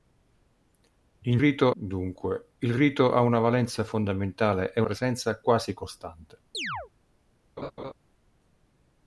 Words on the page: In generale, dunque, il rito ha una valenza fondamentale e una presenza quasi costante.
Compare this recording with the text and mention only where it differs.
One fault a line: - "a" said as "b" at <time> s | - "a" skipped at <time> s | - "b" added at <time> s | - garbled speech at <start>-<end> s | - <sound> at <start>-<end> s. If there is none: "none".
- "generale" said as "rito" at 1.4 s
- "una" skipped at 4.8 s
- chirp at 6.5-6.9 s
- laugh at 7.6-7.9 s